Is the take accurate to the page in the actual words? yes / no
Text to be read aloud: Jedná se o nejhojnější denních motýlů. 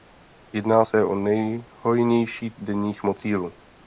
yes